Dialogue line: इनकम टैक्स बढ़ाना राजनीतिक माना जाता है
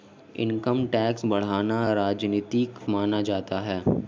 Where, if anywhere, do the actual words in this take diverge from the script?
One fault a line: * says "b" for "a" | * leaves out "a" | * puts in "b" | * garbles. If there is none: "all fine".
all fine